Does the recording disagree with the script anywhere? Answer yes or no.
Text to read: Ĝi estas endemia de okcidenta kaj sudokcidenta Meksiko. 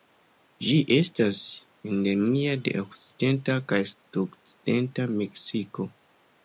no